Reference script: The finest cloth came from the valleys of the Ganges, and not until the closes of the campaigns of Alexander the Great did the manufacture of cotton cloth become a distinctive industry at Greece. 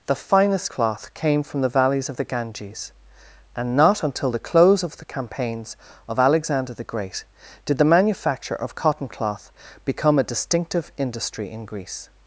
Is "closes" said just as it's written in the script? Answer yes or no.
no